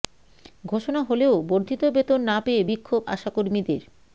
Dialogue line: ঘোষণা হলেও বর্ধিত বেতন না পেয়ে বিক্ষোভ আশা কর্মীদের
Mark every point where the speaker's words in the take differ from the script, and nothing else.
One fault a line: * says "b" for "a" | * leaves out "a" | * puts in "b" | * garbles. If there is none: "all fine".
all fine